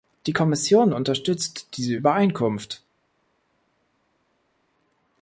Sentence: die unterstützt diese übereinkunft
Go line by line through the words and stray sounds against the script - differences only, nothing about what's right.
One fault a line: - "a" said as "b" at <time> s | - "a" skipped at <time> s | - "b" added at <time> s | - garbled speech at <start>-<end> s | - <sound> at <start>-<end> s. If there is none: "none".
- "kommission" added at 0.3 s